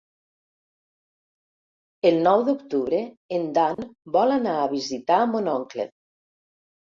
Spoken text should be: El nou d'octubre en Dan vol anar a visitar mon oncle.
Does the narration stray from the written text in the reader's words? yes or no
no